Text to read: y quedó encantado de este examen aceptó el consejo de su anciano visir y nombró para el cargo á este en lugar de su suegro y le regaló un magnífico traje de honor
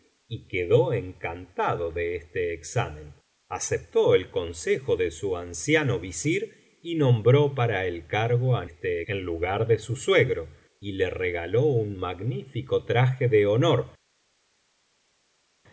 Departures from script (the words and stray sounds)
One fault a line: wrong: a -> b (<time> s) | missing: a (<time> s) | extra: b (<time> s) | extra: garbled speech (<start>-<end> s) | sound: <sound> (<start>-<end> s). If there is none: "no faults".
no faults